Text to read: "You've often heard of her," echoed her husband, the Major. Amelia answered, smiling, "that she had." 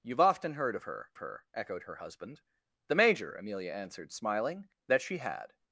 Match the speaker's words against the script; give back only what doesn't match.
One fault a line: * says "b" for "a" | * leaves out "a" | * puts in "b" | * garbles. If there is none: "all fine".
* puts in "her"